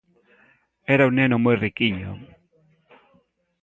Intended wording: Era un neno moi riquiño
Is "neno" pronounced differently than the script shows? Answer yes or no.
no